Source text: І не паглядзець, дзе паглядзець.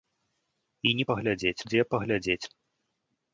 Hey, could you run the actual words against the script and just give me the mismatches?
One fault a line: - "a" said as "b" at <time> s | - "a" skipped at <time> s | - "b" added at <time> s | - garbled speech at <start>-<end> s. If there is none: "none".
none